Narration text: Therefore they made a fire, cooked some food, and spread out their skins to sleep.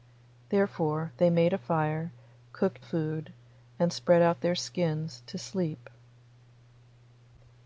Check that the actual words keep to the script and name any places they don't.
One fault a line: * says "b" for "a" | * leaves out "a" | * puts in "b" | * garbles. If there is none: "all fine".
* leaves out "some"